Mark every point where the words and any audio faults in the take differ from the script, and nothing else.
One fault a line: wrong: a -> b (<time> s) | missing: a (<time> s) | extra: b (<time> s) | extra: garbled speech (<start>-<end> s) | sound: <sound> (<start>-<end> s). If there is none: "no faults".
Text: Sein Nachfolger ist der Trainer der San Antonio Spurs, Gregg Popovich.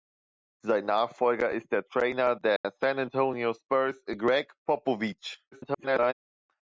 sound: dropout (2.6-2.6 s)
extra: garbled speech (5.5-6.1 s)